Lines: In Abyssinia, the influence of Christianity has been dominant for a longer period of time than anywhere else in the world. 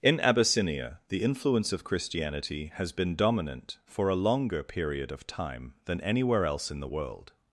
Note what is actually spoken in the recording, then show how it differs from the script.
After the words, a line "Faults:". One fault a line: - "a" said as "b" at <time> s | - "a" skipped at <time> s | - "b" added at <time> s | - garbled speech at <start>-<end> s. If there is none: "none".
In Abyssinia, the influence of Christianity has been dominant for a longer period of time than anywhere else in the world.
Faults:
none